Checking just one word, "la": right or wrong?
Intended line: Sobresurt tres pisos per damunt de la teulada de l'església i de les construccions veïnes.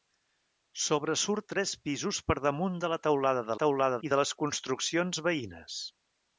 right